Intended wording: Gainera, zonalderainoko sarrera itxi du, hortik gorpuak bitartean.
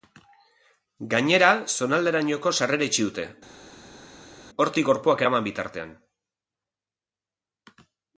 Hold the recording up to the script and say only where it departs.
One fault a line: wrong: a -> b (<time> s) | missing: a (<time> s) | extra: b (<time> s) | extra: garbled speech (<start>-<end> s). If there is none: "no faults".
wrong: du -> dute (3.1 s)
extra: eraman (5.2 s)